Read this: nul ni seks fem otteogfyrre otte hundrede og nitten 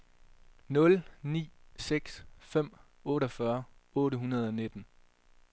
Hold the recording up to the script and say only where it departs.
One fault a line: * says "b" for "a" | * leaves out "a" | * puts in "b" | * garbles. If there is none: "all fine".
all fine